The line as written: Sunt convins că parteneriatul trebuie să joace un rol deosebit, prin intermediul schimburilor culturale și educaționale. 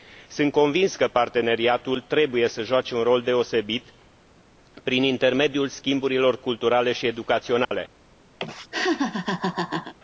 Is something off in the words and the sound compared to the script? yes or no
yes